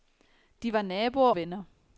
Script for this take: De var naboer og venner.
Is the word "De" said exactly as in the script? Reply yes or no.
yes